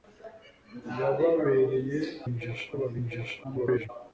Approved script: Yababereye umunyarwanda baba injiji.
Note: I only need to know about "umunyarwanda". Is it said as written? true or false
false